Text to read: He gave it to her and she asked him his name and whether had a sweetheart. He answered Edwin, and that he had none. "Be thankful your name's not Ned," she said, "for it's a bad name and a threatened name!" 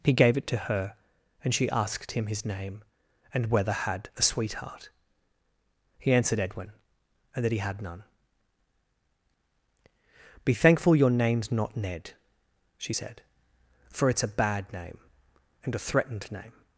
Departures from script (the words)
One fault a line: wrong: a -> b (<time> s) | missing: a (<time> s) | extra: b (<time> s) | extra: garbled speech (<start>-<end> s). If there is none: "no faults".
no faults